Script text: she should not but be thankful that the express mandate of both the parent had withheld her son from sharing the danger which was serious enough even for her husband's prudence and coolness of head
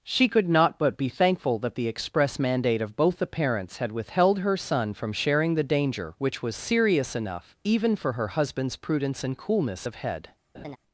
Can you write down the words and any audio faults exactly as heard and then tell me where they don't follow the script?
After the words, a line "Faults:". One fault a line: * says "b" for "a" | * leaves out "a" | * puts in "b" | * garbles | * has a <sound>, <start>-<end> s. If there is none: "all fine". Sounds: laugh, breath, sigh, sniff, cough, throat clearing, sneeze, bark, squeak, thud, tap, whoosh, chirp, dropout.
she could not but be thankful that the express mandate of both the parents had withheld her son from sharing the danger which was serious enough even for her husband's prudence and coolness of head
Faults:
* says "could" for "should"
* says "parents" for "parent"
* has a laugh, 10.5-10.8 s